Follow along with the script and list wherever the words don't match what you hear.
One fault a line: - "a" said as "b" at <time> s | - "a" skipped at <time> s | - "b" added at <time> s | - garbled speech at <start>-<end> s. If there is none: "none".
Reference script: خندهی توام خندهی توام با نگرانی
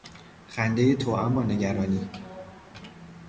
- "خندهی توام" skipped at 1.4 s